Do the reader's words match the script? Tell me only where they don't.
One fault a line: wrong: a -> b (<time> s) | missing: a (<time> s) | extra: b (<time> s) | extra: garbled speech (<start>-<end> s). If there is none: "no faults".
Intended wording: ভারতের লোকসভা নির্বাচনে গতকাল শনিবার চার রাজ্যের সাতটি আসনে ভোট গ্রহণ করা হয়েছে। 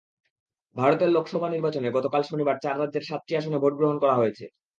no faults